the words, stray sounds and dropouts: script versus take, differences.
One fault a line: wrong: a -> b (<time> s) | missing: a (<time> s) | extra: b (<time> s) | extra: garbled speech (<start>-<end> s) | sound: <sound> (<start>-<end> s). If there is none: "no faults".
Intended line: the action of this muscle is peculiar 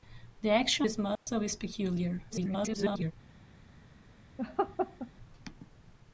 missing: of (0.9 s)
sound: dropout (1.2-1.3 s)
extra: garbled speech (2.3-3.1 s)
sound: laugh (4.4-5.1 s)